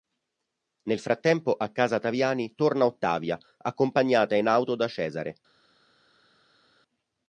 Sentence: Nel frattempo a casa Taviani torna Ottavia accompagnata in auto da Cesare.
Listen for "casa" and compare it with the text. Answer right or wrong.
right